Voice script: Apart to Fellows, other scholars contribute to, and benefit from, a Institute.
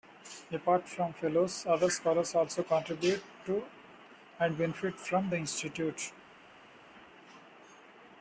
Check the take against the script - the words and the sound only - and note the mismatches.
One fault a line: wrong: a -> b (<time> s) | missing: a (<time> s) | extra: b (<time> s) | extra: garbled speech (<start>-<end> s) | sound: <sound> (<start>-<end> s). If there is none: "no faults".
wrong: to -> from (0.9 s)
extra: also (2.3 s)
wrong: a -> the (5.3 s)